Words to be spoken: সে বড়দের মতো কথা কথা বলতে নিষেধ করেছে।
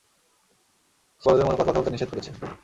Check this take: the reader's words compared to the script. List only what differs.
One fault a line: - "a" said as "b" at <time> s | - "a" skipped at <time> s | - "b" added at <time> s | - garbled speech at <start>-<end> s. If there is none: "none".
none